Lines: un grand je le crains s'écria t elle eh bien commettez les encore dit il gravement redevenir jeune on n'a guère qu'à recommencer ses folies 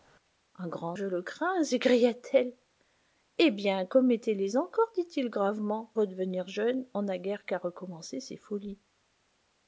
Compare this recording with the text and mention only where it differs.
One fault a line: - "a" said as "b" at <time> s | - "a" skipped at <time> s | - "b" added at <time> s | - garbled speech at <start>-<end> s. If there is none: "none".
none